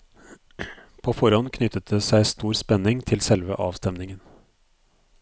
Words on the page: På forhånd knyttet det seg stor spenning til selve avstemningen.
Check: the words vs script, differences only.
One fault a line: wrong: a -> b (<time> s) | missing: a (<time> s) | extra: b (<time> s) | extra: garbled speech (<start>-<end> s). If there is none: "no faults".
no faults